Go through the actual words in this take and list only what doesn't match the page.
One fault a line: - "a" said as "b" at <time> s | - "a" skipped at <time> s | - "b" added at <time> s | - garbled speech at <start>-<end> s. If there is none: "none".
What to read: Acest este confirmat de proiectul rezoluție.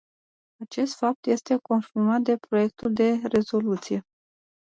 - "fapt" added at 0.9 s
- "de" added at 2.9 s